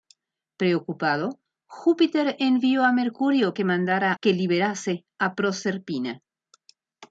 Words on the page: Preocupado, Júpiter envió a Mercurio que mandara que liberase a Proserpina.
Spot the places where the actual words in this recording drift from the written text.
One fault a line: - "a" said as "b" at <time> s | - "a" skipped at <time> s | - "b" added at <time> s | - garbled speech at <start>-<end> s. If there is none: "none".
none